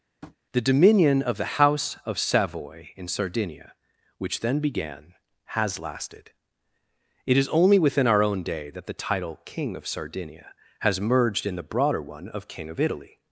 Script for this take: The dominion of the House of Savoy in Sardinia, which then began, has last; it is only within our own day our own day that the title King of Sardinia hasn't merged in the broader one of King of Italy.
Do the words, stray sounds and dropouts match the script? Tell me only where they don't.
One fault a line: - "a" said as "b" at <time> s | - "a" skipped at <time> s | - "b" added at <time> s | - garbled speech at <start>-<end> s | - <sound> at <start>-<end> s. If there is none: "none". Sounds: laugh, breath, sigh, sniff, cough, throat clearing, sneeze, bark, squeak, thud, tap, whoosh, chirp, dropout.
- tap at 0.2-0.4 s
- "last" said as "lasted" at 5.8 s
- "our own day" skipped at 8.7 s
- "hasn't" said as "has" at 10.8 s